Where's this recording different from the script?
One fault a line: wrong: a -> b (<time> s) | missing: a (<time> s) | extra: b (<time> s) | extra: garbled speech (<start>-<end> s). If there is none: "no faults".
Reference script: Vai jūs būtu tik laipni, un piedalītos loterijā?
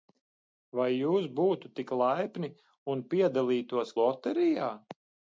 no faults